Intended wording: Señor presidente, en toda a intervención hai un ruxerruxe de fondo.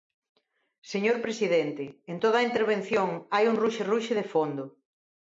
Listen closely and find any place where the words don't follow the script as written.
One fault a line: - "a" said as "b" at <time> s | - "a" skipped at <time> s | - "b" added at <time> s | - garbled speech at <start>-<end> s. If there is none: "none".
none